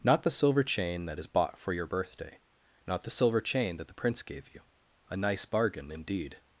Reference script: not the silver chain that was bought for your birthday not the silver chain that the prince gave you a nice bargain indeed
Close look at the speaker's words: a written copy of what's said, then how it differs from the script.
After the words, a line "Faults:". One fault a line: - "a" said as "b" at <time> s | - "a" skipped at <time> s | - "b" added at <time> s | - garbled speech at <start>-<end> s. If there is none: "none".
not the silver chain that is bought for your birthday not the silver chain that the prince gave you a nice bargain indeed
Faults:
- "was" said as "is" at 1.2 s